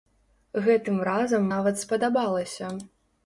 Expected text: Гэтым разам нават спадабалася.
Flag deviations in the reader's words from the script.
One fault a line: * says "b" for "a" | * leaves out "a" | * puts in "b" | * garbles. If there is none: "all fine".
all fine